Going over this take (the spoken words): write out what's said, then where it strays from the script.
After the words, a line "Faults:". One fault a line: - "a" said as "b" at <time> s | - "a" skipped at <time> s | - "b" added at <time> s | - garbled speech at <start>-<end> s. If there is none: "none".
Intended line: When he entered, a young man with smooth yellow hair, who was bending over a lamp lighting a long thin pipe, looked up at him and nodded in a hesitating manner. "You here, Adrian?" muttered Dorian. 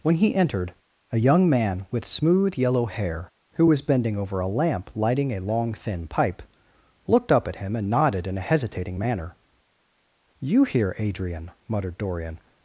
When he entered, a young man with smooth yellow hair, who was bending over a lamp lighting a long thin pipe, looked up at him and nodded in a hesitating manner. "You here, Adrian?" muttered Dorian.
Faults:
none